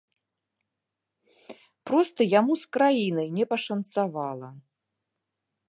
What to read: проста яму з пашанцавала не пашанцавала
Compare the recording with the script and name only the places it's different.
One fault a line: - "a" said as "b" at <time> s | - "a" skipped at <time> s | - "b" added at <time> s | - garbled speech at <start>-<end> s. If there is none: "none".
- "пашанцавала" said as "краінай" at 2.8 s